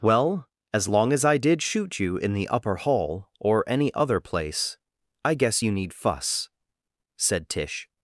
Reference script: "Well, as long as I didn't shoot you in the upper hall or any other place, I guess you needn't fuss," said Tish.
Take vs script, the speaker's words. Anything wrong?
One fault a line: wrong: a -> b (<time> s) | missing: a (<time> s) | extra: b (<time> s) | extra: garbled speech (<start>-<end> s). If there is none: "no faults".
wrong: didn't -> did (1.4 s)
wrong: needn't -> need (5.7 s)